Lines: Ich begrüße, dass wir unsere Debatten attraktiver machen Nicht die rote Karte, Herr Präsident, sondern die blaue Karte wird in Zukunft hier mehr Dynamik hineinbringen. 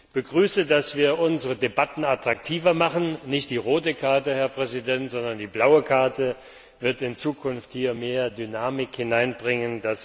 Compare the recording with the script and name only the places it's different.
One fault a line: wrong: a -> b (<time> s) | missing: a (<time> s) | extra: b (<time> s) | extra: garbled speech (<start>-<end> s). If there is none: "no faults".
no faults